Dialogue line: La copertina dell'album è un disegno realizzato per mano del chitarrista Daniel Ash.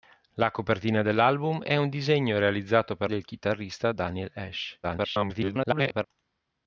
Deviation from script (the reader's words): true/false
true